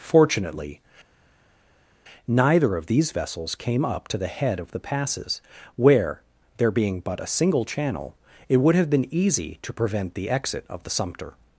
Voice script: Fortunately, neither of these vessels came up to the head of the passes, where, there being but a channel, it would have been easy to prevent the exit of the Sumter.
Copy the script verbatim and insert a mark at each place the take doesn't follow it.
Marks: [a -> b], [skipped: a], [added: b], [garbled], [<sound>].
Fortunately, neither of these vessels came up to the head of the passes, where, there being but a [added: single] channel, it would have been easy to prevent the exit of the Sumter.